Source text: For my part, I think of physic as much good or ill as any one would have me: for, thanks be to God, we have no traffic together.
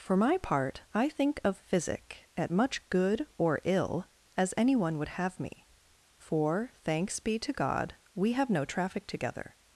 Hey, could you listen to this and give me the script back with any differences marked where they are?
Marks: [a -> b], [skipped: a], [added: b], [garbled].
For my part, I think of physic [as -> at] much good or ill as any one would have me: for, thanks be to God, we have no traffic together.